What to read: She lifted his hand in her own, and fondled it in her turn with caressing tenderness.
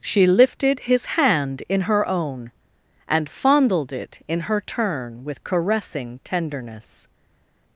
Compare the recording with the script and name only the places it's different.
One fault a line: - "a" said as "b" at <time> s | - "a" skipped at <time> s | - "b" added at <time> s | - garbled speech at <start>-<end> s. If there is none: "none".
none